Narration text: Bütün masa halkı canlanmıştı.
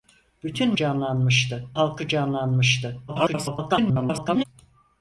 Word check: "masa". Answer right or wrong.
wrong